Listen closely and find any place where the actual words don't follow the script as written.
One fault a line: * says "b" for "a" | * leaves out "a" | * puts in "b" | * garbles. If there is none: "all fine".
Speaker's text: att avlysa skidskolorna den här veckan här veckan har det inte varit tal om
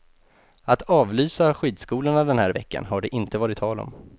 * leaves out "här veckan"